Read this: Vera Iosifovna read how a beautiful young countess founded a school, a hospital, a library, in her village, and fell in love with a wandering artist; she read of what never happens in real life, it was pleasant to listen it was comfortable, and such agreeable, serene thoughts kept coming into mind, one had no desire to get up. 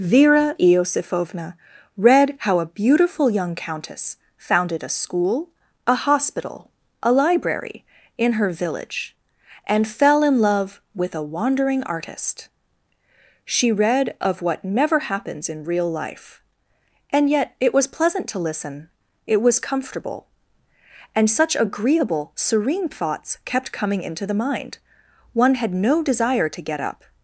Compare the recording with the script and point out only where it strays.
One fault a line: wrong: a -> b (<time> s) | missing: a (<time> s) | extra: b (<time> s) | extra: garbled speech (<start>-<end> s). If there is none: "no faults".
extra: and yet (17.1 s)
extra: the (24.2 s)